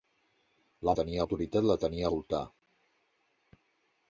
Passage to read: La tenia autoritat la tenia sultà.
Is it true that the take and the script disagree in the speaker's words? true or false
false